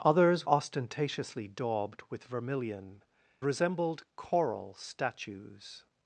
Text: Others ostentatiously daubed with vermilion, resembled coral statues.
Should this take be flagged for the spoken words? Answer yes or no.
no